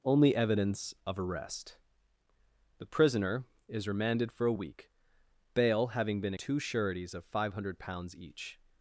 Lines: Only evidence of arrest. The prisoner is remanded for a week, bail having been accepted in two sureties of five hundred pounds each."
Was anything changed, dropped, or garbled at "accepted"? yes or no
yes